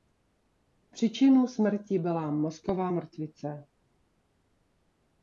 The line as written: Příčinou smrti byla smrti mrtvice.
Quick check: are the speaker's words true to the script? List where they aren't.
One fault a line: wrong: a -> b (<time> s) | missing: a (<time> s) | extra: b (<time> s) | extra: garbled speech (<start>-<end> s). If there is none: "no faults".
wrong: smrti -> mozková (2.3 s)